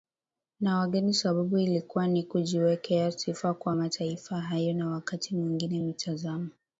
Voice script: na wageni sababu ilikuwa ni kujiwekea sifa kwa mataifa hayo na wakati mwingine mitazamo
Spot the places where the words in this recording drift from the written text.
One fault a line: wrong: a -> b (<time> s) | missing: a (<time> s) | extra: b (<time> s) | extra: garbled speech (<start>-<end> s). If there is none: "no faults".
no faults